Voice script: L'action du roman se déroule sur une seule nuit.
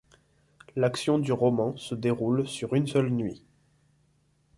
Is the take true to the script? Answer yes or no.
yes